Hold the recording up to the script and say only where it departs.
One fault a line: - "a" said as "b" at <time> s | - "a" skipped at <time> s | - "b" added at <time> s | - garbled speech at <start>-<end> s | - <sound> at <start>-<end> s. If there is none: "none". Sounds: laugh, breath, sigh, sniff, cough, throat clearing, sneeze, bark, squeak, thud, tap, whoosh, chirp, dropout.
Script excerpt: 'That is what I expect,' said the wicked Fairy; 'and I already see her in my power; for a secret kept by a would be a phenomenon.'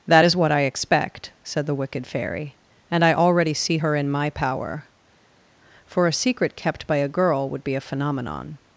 - "girl" added at 7.1 s